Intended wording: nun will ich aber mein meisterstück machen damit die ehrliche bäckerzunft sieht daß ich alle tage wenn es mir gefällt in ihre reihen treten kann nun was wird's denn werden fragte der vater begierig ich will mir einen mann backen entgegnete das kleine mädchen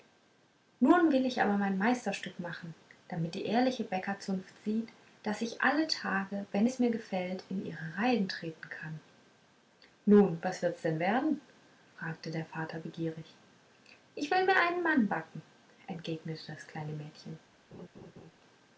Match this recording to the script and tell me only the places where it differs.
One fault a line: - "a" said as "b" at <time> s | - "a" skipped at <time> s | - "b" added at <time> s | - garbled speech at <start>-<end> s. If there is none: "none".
none